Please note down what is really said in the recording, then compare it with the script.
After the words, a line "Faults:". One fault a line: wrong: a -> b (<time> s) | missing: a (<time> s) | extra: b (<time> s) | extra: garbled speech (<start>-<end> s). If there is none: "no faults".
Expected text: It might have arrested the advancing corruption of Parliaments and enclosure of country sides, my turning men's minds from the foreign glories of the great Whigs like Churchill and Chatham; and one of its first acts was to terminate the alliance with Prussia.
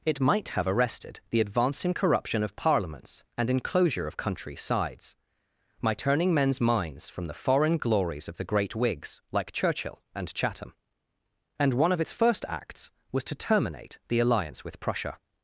It might have arrested the advancing corruption of Parliaments and enclosure of country sides, my turning men's minds from the foreign glories of the great Whigs like Churchill and Chatham; and one of its first acts was to terminate the alliance with Prussia.
Faults:
no faults